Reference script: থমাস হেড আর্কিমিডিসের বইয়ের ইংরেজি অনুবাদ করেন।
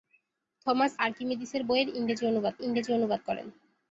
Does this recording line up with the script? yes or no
no